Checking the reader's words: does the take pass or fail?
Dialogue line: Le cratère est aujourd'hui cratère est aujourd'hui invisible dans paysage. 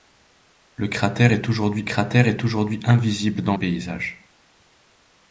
pass